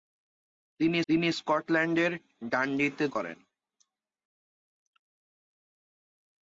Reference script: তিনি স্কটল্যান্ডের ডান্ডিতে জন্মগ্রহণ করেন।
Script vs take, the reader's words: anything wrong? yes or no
yes